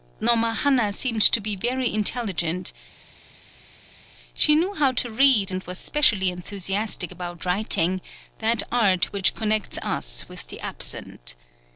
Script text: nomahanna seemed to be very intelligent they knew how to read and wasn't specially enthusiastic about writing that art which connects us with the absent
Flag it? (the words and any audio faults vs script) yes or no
yes